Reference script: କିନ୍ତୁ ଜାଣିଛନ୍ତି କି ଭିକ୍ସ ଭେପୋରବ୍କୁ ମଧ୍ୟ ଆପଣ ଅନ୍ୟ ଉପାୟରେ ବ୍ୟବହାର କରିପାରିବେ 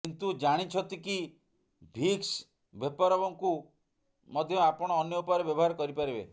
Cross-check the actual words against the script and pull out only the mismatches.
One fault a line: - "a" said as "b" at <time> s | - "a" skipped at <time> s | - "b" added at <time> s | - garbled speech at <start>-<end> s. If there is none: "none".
none